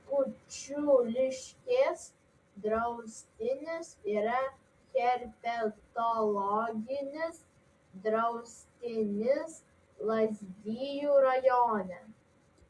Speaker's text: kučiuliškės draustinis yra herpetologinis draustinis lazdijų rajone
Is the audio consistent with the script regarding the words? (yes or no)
yes